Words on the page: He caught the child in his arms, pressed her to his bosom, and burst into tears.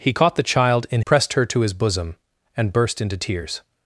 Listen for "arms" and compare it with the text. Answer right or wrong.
wrong